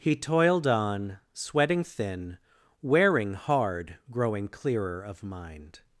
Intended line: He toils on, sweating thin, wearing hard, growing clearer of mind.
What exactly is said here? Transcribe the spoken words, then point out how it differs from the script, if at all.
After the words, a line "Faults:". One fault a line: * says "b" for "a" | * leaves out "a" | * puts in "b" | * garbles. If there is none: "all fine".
He toiled on, sweating thin, wearing hard, growing clearer of mind.
Faults:
* says "toiled" for "toils"